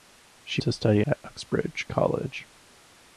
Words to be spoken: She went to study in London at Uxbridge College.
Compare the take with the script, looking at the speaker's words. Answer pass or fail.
fail